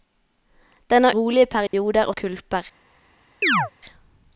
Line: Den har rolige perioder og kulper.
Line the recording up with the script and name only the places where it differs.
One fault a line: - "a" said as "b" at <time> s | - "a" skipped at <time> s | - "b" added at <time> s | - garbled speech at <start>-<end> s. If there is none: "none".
none